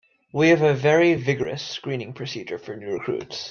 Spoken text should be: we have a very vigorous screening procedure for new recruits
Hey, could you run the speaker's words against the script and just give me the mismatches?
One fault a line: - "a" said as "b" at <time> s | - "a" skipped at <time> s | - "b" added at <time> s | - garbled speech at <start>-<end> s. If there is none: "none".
none